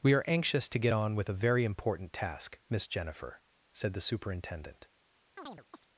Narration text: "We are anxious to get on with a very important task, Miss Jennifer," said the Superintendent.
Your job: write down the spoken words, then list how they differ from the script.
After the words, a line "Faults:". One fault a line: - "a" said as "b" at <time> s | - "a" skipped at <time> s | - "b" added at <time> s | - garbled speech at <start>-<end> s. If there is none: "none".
"We are anxious to get on with a very important task, Miss Jennifer," said the Superintendent.
Faults:
none